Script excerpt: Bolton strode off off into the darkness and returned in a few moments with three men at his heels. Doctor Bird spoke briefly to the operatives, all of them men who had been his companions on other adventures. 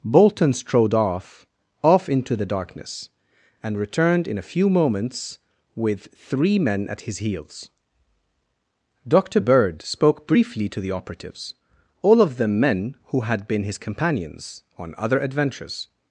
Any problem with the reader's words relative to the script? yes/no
no